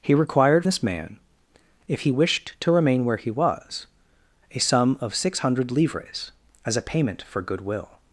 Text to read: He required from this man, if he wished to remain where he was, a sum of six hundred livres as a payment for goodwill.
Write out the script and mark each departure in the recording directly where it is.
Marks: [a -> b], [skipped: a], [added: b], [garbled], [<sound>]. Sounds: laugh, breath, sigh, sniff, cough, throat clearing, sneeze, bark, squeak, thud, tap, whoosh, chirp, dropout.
He required [skipped: from] this man, if he wished to remain where he was, a sum of six hundred livres as a payment for goodwill.